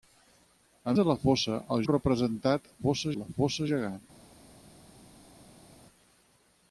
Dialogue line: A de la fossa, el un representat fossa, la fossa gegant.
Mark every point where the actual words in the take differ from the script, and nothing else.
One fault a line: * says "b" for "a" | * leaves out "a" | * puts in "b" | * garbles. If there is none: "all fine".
all fine